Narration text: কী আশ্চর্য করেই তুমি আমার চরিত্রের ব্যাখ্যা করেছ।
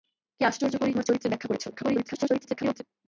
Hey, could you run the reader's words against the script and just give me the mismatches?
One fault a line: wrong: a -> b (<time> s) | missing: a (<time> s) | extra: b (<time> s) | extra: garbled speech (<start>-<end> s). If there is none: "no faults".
missing: তুমি (0.9 s)
extra: garbled speech (1.7-2.8 s)